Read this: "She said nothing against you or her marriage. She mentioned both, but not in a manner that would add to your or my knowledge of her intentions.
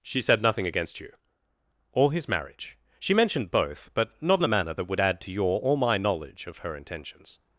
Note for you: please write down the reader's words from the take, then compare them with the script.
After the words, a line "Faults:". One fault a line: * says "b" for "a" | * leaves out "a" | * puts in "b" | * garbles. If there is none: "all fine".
"She said nothing against you or his marriage. She mentioned both, but not in a manner that would add to your or my knowledge of her intentions.
Faults:
* says "his" for "her"